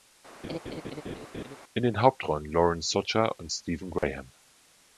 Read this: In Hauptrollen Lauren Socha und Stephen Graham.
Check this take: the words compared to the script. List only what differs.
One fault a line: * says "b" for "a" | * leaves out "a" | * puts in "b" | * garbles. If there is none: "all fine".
* puts in "den"